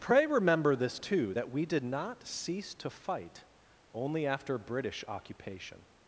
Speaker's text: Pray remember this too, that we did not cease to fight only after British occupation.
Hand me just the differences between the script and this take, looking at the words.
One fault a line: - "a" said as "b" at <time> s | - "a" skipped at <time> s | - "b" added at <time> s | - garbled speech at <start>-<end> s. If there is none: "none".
none